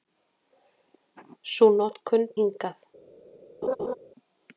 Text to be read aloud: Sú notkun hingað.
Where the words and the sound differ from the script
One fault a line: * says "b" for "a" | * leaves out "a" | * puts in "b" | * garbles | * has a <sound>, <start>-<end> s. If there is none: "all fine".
* has a laugh, 3.6-3.9 s